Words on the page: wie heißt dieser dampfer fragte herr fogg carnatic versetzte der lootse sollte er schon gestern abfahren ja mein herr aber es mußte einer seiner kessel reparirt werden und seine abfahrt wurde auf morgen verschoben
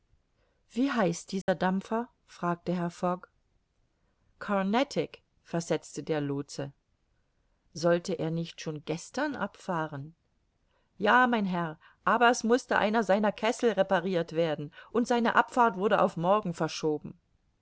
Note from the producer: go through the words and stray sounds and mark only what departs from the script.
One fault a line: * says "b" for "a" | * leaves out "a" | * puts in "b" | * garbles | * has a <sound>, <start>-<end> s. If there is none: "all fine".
* has a dropout, 1.4-1.5 s
* puts in "nicht"